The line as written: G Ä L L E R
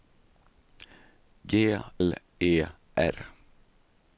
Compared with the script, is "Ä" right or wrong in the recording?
wrong